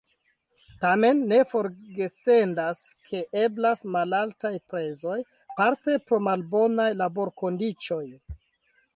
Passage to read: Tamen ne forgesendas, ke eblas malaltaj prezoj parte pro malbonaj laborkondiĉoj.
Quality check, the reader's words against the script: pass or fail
pass